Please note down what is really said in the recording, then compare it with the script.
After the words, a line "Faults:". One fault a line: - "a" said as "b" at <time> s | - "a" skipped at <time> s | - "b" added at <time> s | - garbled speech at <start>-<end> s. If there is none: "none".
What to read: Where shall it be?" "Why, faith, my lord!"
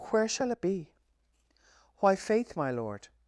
Where shall it be?" "Why, faith, my lord!"
Faults:
none